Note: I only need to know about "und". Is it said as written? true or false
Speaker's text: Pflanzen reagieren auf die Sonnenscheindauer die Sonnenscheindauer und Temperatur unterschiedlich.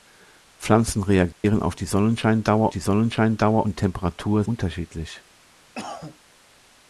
true